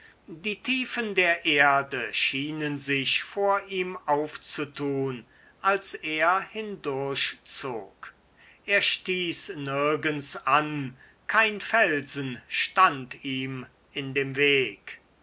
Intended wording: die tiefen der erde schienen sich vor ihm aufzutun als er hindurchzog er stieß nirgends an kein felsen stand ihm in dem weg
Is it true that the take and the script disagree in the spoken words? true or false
false